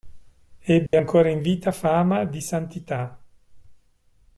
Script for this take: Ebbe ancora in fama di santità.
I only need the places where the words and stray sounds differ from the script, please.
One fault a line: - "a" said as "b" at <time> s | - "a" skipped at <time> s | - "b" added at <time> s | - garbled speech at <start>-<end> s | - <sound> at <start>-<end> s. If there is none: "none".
- dropout at 0.9-0.9 s
- "vita" added at 1.4 s